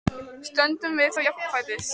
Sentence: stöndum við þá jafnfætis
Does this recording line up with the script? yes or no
yes